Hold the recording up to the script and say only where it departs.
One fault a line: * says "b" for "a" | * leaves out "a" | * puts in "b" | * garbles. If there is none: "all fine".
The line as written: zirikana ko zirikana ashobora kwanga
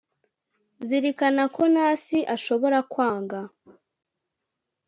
* says "nasi" for "zirikana"